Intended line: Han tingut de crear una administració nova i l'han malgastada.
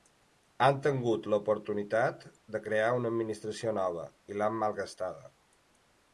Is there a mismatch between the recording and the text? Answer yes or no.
yes